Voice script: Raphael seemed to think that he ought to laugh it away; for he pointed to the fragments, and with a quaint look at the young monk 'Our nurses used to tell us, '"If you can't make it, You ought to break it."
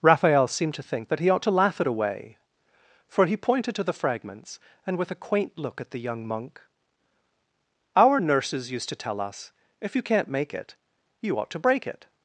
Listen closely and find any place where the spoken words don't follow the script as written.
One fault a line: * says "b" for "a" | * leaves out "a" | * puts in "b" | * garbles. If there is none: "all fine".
all fine